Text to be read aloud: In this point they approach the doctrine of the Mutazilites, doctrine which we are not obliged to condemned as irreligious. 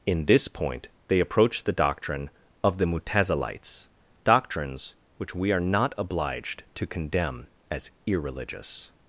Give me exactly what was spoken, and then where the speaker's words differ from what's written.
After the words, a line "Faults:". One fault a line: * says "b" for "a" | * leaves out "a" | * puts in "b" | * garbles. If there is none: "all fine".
In this point they approach the doctrine of the Mutazilites, doctrines which we are not obliged to condemn as irreligious.
Faults:
* says "doctrines" for "doctrine"
* says "condemn" for "condemned"